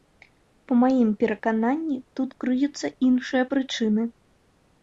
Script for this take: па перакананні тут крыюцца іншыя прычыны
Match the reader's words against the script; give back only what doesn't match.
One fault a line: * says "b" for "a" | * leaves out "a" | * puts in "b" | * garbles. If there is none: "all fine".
* puts in "маім"